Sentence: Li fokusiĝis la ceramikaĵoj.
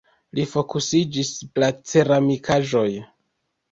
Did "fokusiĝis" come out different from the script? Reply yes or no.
no